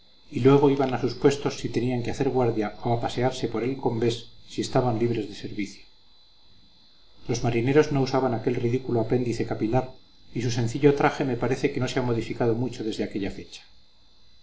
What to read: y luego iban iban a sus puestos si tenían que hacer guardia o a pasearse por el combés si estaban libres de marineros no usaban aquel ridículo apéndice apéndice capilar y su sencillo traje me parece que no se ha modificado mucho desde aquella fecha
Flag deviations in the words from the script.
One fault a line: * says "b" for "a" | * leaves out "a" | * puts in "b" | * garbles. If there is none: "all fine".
* leaves out "iban"
* puts in "servicio los"
* leaves out "apéndice"